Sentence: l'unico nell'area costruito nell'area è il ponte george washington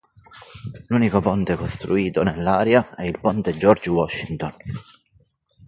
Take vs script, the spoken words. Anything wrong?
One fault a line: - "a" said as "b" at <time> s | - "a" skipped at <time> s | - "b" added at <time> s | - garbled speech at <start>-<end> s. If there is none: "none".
- "nell'area" said as "ponte" at 1.2 s